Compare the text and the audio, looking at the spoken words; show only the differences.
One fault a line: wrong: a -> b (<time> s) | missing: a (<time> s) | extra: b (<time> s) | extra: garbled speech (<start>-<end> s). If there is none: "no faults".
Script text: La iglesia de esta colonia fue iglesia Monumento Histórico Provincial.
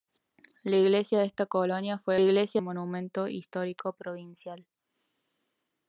no faults